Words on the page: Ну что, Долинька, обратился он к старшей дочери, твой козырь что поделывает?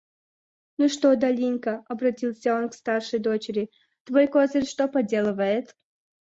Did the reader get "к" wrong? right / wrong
right